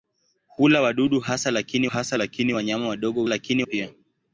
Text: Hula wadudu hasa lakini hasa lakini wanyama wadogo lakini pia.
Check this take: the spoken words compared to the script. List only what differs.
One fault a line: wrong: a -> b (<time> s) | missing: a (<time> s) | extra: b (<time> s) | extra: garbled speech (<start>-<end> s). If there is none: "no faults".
no faults